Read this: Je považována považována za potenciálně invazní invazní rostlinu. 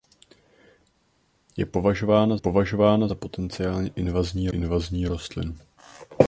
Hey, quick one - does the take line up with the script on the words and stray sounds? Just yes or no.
yes